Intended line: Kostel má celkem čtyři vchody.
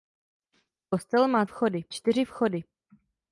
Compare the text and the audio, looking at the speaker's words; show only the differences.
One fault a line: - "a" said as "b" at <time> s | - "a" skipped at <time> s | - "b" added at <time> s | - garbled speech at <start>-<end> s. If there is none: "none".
- "celkem" said as "vchody" at 1.5 s